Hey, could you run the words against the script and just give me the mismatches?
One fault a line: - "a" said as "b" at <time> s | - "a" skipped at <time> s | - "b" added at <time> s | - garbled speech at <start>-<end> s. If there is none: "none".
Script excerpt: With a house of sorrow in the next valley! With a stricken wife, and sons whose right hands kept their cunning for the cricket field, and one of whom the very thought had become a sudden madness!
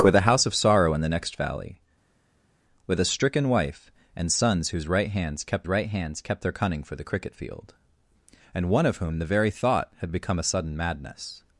- "right hands kept" added at 5.7 s